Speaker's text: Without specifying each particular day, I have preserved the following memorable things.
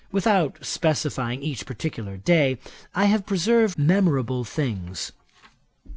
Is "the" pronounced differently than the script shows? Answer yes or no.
yes